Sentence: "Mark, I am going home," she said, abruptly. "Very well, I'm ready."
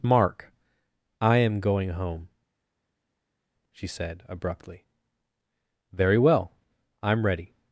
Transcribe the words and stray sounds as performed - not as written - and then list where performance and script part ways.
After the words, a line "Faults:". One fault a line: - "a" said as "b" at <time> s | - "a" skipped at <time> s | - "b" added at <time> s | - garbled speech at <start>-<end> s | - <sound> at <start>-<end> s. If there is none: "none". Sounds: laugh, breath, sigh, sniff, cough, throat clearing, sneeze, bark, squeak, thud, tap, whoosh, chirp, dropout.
"Mark, I am going home," she said, abruptly. "Very well, I'm ready."
Faults:
none